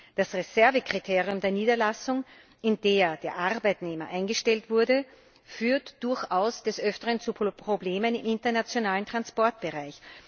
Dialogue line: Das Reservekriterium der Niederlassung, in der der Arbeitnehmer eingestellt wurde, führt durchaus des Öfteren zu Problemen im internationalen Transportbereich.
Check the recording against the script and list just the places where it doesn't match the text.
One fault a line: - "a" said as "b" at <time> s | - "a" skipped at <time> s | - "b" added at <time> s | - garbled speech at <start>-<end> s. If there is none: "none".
none